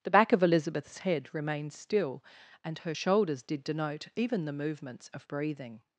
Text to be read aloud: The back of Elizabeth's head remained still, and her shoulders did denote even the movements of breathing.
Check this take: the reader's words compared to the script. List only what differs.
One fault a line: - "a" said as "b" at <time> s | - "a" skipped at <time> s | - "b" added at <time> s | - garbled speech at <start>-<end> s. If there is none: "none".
none